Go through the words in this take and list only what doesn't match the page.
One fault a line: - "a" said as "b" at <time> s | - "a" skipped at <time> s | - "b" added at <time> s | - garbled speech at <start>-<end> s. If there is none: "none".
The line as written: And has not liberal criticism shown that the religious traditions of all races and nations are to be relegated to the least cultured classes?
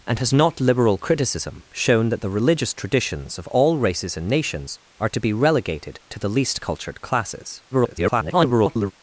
- garbled speech at 7.7-8.9 s